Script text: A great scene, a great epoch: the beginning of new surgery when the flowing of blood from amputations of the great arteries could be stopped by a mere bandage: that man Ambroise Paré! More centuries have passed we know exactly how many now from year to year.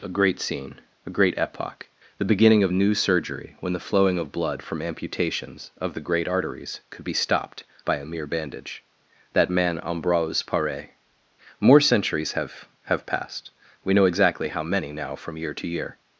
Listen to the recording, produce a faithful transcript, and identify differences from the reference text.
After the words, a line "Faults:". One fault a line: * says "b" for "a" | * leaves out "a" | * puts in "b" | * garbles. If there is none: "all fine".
A great scene, a great epoch: the beginning of new surgery when the flowing of blood from amputations of the great arteries could be stopped by a mere bandage: that man Ambroise Paré! More centuries have have passed we know exactly how many now from year to year.
Faults:
* puts in "have"